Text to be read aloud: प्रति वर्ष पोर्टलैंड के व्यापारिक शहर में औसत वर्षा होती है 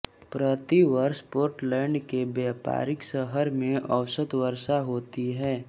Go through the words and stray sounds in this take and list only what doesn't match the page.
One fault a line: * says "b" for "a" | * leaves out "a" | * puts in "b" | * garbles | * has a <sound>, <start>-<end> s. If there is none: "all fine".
all fine